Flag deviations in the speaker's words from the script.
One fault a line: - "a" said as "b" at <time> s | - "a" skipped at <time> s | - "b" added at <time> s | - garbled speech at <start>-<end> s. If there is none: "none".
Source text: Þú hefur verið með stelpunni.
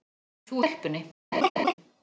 - "hefur verið með" skipped at 0.6 s